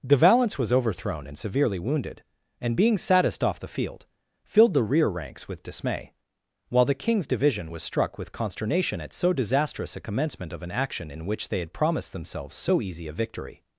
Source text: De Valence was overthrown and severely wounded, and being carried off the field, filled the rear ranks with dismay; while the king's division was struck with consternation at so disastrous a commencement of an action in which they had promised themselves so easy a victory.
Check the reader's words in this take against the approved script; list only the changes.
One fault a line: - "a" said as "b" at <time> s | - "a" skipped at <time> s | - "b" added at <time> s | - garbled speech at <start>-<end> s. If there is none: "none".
- "carried" said as "saddest" at 3.0 s